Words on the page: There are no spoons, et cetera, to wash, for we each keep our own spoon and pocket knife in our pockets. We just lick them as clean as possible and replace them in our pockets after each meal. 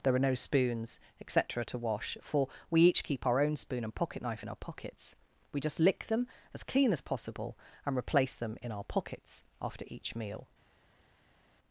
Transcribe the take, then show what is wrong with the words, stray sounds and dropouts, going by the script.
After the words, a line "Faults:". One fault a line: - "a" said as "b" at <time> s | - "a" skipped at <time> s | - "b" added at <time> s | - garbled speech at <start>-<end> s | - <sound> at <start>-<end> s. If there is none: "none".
There are no spoons, et cetera, to wash, for we each keep our own spoon and pocket knife in our pockets. We just lick them as clean as possible and replace them in our pockets after each meal.
Faults:
none